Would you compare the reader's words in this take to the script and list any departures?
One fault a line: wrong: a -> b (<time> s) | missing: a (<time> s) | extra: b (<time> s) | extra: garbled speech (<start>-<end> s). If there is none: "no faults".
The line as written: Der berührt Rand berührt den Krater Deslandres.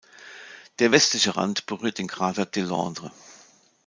wrong: berührt -> westliche (0.9 s)